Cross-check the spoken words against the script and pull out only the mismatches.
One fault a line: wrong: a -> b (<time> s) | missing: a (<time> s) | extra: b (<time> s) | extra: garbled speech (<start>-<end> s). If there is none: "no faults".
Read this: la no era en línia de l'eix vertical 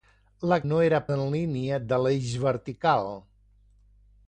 no faults